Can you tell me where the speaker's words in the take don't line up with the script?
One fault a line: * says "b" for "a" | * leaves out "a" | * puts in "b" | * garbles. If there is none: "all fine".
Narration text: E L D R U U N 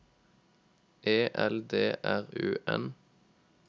* leaves out "U"